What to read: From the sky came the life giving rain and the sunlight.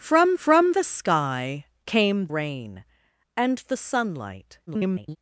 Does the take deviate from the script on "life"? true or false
true